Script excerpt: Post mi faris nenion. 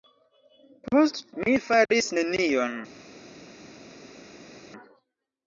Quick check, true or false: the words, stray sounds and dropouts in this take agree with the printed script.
true